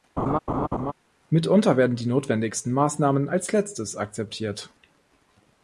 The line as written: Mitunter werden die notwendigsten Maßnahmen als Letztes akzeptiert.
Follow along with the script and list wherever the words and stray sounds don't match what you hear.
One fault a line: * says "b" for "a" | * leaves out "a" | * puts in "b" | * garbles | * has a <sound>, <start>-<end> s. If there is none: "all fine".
* has a laugh, 0.2-0.9 s